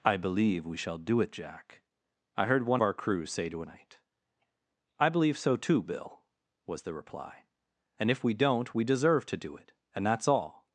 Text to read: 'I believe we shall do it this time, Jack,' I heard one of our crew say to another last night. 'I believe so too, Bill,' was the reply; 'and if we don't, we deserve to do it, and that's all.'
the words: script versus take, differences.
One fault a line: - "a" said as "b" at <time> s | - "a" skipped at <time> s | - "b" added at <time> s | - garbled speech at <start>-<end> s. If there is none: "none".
- "this time" skipped at 1.3 s
- "of" skipped at 2.8 s
- "another last" skipped at 3.6 s